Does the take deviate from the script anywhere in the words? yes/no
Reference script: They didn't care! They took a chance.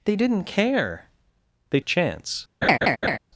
yes